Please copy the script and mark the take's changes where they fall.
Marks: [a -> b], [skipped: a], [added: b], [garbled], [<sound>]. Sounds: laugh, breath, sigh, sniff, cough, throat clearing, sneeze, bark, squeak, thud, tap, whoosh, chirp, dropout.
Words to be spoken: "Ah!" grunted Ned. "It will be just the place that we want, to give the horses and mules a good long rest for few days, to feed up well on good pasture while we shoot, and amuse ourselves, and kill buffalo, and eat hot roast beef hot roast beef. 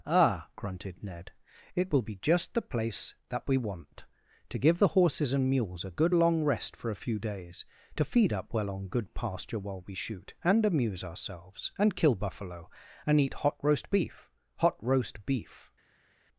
"Ah!" grunted Ned. "It will be just the place that we want, to give the horses and mules a good long rest for [added: a] few days, to feed up well on good pasture while we shoot, and amuse ourselves, and kill buffalo, and eat hot roast beef hot roast beef.